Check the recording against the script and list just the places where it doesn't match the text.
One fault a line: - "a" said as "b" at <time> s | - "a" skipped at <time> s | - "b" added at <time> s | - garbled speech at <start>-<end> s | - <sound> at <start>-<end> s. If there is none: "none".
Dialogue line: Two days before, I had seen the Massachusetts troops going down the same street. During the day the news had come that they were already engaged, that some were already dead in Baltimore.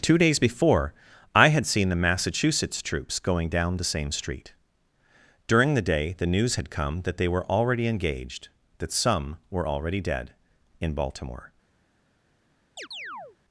- chirp at 12.8-13.4 s